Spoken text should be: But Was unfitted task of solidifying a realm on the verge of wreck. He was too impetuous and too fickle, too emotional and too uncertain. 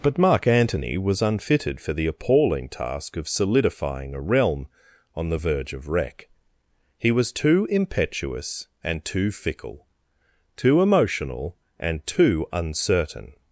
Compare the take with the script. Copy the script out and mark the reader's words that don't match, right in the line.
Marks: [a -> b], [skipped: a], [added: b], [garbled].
But [added: Mark Antony] Was unfitted [added: for the appalling] task of solidifying a realm on the verge of wreck. He was too impetuous and too fickle, too emotional and too uncertain.